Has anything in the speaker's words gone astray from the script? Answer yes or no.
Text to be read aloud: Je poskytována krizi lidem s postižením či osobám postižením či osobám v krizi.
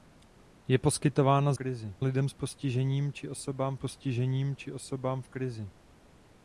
no